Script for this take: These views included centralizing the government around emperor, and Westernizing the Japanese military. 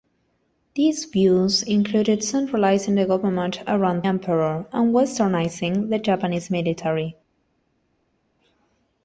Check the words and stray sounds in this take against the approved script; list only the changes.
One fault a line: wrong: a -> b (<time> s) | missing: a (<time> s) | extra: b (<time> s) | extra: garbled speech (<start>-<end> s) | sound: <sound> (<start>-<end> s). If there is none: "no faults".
no faults